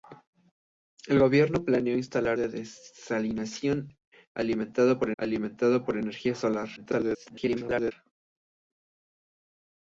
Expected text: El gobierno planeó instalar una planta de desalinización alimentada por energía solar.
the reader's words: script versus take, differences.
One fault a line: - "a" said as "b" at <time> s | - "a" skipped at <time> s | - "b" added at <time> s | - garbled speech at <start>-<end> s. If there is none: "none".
- "una planta de desalinización" said as "de desalinización alimentada por" at 2.3 s
- garbled speech at 6.8-7.9 s